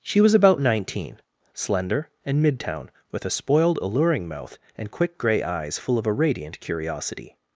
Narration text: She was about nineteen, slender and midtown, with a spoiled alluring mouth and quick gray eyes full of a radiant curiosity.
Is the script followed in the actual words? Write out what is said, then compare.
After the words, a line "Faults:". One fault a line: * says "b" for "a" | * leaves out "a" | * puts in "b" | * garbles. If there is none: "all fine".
She was about nineteen, slender and midtown, with a spoiled alluring mouth and quick gray eyes full of a radiant curiosity.
Faults:
all fine